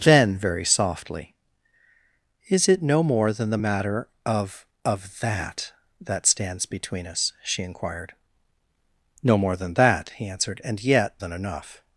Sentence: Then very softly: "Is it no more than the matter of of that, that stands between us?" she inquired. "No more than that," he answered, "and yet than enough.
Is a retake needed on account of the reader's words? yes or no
no